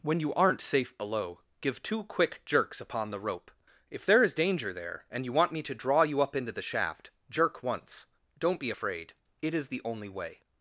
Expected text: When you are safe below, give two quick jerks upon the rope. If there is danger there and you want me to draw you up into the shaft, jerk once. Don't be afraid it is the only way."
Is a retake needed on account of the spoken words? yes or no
yes